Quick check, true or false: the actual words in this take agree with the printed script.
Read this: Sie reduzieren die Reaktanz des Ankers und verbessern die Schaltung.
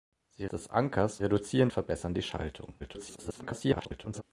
false